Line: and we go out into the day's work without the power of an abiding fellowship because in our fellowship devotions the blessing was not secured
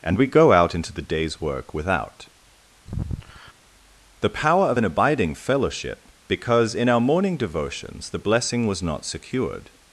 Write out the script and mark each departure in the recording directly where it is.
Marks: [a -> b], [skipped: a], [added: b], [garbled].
and we go out into the day's work without the power of an abiding fellowship because in our [fellowship -> morning] devotions the blessing was not secured